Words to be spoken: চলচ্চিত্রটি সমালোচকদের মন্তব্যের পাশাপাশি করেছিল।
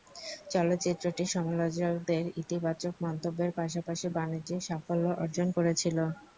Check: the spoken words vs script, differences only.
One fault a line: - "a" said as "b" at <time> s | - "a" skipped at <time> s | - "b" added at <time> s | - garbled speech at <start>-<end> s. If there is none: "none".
- "ইতিবাচক" added at 2.4 s
- "বাণিজ্যিক সাফল্য অর্জন" added at 4.2 s